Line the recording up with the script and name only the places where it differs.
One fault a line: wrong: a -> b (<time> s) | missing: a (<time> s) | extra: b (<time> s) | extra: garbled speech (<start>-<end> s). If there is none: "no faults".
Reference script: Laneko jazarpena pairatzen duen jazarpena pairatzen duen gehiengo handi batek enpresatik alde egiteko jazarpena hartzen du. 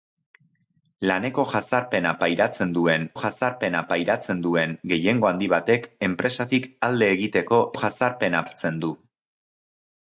no faults